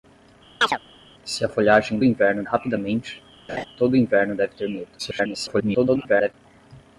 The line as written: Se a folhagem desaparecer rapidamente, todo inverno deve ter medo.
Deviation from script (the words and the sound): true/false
true